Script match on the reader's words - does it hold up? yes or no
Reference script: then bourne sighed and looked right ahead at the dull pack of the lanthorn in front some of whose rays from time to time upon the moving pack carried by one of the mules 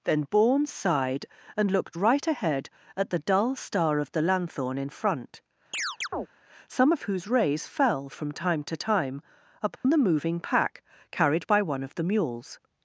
no